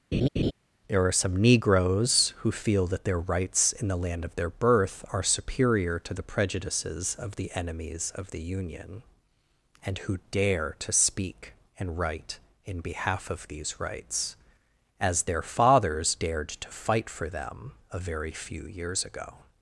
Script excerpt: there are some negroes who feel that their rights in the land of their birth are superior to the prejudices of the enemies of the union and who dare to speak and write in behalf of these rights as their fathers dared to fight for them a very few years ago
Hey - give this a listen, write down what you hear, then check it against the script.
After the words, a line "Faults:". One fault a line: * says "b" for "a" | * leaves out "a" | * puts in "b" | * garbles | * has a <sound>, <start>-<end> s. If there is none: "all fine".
there are some negroes who feel that their rights in the land of their birth are superior to the prejudices of the enemies of the union and who dare to speak and write in behalf of these rights as their fathers dared to fight for them a very few years ago
Faults:
* has a laugh, 0.1-0.5 s